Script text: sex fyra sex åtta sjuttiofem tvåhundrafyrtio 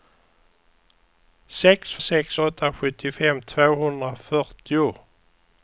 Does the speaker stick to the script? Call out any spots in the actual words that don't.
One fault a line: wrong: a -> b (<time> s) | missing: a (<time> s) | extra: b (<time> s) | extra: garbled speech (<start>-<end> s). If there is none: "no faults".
missing: fyra (1.9 s)